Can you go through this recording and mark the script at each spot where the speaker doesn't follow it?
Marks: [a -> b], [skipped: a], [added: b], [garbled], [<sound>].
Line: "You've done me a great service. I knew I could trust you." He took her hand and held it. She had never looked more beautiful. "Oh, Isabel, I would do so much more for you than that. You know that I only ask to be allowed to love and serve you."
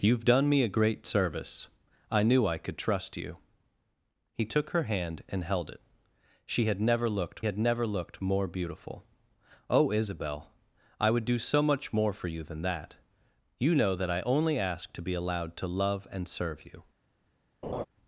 "You've done me a great service. I knew I could trust you." He took her hand and held it. She had never looked [added: had never looked] more beautiful. "Oh, Isabel, I would do so much more for you than that. You know that I only ask to be allowed to love and serve you." [laugh]